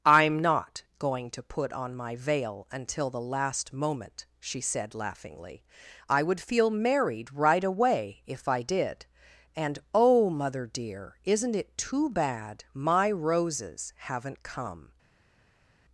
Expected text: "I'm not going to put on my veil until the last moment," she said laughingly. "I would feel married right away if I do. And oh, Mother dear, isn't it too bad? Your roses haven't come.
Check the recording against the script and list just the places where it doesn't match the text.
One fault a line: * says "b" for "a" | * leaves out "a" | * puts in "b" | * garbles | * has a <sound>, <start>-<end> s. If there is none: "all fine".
* says "did" for "do"
* says "My" for "Your"